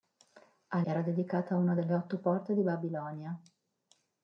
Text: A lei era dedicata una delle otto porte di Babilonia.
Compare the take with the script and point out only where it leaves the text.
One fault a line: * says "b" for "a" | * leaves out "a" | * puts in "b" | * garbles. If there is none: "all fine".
* leaves out "lei"